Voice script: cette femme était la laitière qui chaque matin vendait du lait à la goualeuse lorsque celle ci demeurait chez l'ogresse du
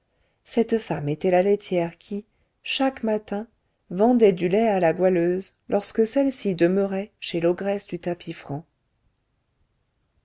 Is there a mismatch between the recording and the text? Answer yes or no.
no